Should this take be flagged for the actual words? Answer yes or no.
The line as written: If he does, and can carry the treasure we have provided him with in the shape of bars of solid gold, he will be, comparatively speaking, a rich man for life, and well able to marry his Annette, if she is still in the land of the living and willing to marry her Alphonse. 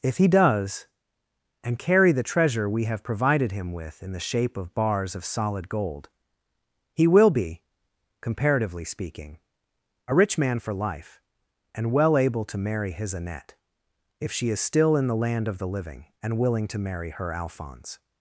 yes